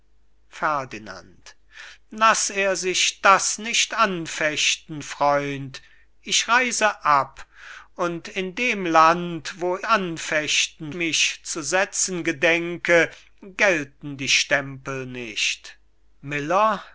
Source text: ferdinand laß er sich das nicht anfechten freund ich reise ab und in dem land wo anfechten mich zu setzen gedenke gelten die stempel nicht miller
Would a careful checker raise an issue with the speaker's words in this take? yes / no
no